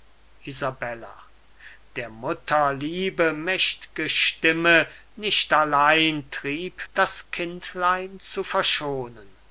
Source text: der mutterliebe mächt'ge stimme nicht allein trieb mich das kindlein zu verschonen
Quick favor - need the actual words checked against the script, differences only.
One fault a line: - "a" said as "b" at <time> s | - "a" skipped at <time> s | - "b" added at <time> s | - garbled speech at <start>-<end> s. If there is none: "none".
- "mich" skipped at 6.9 s